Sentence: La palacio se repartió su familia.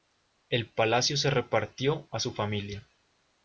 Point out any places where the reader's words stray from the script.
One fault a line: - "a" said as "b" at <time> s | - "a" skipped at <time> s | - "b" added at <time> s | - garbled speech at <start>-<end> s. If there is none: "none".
- "La" said as "El" at 0.5 s
- "a" added at 2.1 s